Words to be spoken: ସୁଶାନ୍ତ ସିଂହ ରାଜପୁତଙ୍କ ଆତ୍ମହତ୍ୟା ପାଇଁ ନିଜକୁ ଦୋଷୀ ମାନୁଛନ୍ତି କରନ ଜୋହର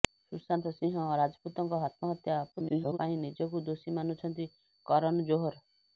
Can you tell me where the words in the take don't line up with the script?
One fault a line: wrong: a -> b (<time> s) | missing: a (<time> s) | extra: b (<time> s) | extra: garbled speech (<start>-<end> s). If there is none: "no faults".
extra: garbled speech (2.5-3.0 s)